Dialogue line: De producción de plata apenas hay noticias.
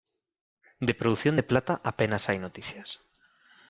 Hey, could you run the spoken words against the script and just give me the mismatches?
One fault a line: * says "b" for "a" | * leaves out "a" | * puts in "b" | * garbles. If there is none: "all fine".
all fine